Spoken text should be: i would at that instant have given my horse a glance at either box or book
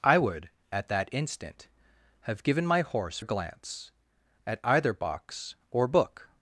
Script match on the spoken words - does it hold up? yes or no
yes